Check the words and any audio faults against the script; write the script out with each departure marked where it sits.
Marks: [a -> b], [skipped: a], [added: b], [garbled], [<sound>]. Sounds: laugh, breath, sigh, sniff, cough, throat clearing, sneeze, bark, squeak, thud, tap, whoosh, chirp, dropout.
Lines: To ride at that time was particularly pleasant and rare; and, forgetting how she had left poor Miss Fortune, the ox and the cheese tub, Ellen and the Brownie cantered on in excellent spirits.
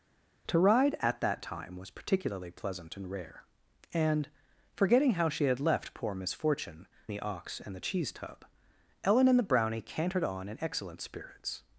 To ride at that time was particularly pleasant and rare; and, forgetting how she had left poor Miss Fortune, the ox and the cheese tub, Ellen and the Brownie cantered on in excellent spirits.